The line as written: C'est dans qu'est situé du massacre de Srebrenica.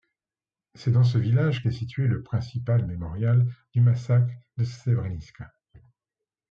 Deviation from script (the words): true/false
true